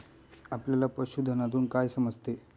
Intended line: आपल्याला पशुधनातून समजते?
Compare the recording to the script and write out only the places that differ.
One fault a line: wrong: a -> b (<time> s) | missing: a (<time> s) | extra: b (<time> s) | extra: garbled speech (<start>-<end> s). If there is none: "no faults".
extra: काय (1.6 s)